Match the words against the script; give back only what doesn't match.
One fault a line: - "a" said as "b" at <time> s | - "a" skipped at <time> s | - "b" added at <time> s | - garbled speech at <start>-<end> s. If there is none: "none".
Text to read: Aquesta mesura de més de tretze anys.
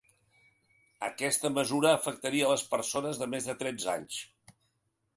- "afectaria les persones" added at 2.0 s